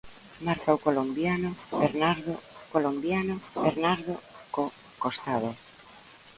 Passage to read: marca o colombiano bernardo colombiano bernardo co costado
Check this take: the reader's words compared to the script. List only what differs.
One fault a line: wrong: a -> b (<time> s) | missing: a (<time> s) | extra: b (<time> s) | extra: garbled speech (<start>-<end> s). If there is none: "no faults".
no faults